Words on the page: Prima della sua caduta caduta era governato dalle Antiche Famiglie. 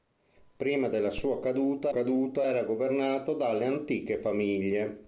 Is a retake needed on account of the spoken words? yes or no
no